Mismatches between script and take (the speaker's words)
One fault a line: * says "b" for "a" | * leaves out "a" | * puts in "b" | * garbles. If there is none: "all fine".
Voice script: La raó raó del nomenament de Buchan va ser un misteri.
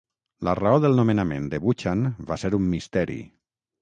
* leaves out "raó"